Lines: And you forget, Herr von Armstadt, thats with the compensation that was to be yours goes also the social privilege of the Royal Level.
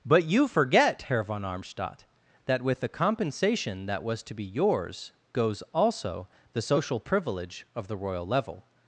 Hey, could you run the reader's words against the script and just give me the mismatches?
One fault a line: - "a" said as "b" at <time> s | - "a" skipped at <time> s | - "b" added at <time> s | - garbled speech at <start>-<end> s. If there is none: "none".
- "And" said as "But" at 0.1 s
- "thats" said as "that" at 2.5 s